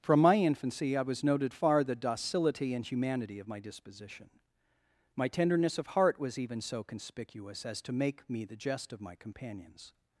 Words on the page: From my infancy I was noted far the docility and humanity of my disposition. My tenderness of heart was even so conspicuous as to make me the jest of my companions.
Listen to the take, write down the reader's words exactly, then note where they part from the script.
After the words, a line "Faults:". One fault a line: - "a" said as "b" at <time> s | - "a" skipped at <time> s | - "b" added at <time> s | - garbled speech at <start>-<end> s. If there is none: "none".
From my infancy I was noted far the docility and humanity of my disposition. My tenderness of heart was even so conspicuous as to make me the jest of my companions.
Faults:
none